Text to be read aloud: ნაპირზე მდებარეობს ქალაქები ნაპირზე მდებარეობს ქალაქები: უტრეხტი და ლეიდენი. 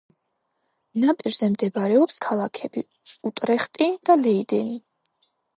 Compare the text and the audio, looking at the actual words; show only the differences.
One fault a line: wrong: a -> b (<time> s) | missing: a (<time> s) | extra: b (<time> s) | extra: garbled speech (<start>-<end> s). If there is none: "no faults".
missing: ნაპირზე მდებარეობს ქალაქები (2.8 s)